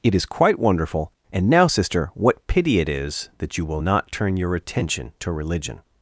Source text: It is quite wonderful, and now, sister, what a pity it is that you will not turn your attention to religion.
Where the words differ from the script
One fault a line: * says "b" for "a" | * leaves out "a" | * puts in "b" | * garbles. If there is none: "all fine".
* leaves out "a"